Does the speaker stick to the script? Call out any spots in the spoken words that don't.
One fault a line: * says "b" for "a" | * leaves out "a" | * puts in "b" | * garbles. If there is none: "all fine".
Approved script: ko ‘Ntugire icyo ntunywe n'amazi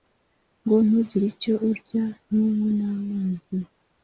* says "ngo" for "ko"
* puts in "urya"